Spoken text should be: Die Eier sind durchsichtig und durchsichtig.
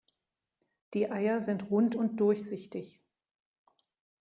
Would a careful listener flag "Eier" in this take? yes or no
no